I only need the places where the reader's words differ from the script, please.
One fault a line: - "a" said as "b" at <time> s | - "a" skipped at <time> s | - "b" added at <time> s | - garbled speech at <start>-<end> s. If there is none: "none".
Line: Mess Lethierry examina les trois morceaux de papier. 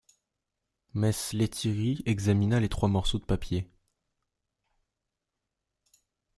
none